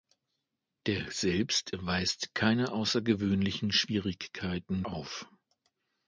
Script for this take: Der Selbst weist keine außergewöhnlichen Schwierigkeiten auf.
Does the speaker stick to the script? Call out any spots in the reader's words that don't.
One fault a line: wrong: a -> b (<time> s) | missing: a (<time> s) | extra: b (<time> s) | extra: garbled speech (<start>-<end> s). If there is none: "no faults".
no faults